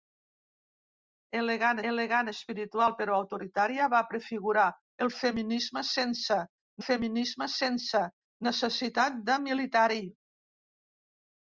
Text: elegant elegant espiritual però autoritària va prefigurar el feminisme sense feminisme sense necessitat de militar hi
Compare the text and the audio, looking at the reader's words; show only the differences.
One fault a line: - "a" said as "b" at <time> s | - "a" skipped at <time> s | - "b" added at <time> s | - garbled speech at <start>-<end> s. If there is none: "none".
none